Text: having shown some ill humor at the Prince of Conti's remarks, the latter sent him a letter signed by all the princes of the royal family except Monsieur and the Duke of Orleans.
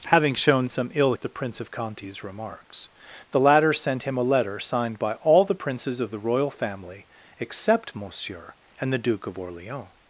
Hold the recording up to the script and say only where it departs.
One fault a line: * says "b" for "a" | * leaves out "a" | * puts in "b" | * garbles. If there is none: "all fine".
* leaves out "humor"